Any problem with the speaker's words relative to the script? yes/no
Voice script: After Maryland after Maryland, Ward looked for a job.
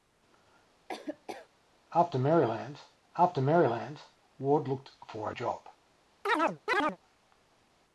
no